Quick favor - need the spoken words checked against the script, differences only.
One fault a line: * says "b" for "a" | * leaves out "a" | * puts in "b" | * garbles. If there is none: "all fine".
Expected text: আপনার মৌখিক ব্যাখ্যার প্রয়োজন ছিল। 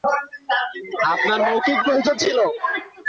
* leaves out "ব্যাখ্যার"